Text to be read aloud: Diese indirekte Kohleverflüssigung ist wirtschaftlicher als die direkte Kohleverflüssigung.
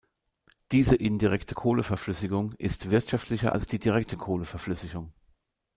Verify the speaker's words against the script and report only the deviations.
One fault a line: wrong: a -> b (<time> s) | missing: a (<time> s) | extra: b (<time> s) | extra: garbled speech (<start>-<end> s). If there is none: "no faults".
no faults